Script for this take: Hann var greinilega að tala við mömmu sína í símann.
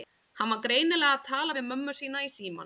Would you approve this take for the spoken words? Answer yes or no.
yes